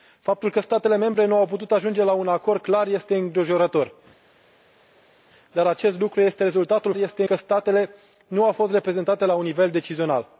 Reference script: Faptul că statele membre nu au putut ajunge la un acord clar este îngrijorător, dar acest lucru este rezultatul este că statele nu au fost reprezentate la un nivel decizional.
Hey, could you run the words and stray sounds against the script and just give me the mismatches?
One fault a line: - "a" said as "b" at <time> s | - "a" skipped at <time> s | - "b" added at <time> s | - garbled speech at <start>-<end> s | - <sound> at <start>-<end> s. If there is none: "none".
none